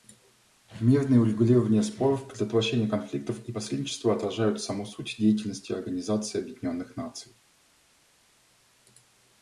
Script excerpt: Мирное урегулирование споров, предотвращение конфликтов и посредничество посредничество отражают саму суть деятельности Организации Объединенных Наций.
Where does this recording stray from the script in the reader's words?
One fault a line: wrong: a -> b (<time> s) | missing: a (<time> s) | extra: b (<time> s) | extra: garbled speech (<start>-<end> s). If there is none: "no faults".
missing: посредничество (4.1 s)